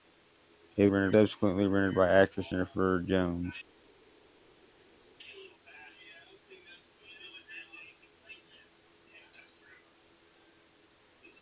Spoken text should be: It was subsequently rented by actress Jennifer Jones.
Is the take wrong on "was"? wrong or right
wrong